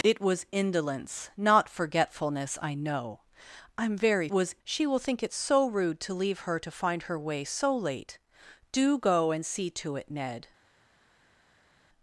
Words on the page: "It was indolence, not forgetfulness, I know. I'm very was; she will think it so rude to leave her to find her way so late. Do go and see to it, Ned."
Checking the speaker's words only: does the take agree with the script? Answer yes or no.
yes